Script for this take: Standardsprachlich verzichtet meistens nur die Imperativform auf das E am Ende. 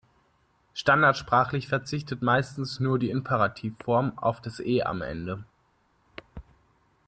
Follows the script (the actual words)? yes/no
yes